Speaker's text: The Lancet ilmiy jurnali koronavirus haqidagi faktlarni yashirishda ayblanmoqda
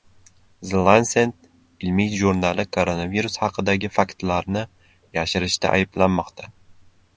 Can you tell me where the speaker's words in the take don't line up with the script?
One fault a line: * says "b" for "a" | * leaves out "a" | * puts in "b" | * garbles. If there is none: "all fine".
all fine